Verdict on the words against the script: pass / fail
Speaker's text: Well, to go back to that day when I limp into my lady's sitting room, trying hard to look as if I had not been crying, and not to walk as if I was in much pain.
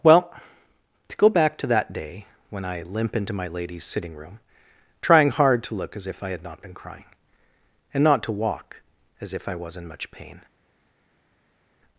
pass